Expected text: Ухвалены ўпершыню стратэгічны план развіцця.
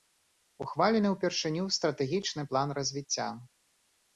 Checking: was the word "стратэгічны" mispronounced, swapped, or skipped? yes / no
no